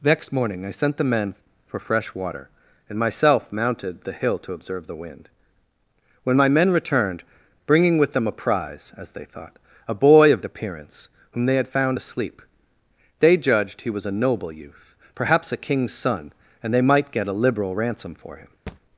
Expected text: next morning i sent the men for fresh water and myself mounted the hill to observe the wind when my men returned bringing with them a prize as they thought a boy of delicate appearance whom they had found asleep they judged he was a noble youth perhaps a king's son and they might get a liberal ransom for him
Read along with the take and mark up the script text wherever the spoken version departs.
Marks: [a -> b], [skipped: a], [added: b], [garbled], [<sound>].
next morning i sent the men for fresh water and myself mounted the hill to observe the wind when my men returned bringing with them a prize as they thought a boy of [skipped: delicate] appearance whom they had found asleep they judged he was a noble youth perhaps a king's son and they might get a liberal ransom for him [thud]